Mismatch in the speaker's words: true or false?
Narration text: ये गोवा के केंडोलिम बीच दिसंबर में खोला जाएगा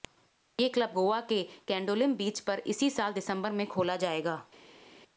true